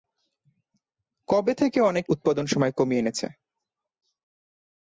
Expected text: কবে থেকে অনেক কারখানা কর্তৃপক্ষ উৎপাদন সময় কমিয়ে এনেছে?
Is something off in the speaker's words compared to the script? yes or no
yes